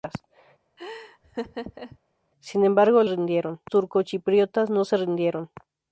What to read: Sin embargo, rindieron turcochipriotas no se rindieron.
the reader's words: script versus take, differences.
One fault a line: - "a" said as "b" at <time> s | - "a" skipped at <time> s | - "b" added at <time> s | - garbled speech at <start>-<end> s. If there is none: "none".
none